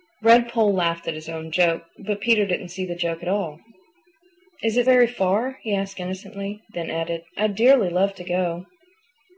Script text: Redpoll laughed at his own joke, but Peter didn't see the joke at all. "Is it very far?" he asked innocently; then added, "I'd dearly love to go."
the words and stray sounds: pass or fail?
pass